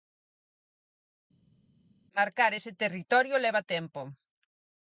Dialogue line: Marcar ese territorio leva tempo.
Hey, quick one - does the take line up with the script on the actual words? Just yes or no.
yes